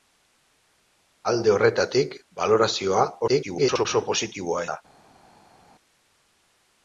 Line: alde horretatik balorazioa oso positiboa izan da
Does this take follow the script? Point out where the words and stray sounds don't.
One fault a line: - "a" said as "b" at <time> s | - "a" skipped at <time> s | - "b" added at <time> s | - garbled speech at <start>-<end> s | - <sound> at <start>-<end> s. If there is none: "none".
- garbled speech at 3.3-3.9 s
- "izan" skipped at 4.7 s